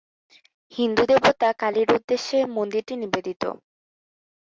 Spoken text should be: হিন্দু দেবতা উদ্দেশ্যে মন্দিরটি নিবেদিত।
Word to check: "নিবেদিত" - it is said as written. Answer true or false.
true